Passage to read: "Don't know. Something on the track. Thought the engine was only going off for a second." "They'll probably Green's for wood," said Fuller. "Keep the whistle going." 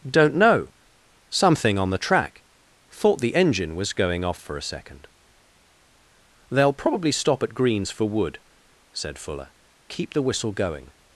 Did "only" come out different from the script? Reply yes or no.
yes